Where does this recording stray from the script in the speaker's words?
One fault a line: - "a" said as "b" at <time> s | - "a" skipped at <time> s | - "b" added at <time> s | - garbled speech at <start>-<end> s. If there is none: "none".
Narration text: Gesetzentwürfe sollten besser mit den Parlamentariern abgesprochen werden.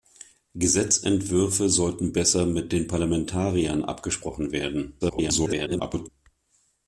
- garbled speech at 5.0-6.1 s